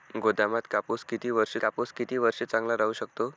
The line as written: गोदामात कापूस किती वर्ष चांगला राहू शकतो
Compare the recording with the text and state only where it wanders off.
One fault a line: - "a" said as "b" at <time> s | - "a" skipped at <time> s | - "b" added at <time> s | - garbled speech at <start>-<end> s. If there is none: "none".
- "कापूस किती वर्ष" added at 1.6 s